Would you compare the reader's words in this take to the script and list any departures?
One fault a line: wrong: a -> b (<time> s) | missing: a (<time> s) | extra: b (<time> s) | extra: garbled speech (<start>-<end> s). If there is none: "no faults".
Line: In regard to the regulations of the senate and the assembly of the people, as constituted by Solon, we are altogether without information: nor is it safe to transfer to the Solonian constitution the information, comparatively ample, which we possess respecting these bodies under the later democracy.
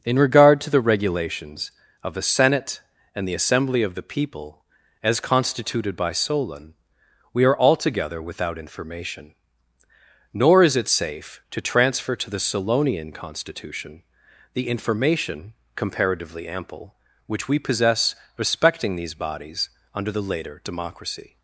no faults